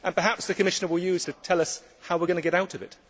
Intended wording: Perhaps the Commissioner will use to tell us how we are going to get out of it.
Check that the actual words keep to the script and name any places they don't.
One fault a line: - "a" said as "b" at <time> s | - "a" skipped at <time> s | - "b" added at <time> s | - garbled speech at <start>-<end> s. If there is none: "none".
none